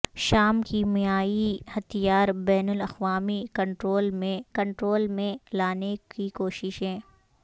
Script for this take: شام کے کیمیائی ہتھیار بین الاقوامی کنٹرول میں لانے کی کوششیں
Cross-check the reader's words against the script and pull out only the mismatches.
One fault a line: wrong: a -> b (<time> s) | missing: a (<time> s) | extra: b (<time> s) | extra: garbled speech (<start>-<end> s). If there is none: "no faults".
missing: کے (0.6 s)
extra: کنٹرول میں (4.5 s)